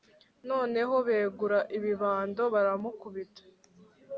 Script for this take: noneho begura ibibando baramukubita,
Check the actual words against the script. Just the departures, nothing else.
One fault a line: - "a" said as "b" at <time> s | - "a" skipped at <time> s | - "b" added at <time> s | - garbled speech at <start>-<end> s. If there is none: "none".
none